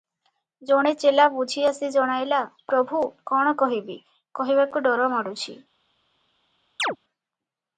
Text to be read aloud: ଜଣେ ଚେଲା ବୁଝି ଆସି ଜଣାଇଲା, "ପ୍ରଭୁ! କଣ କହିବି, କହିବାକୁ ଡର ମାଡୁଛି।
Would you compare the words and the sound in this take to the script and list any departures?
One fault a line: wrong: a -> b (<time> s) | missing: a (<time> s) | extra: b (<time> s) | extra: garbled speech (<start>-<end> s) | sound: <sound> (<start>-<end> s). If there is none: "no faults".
sound: chirp (6.8-7.0 s)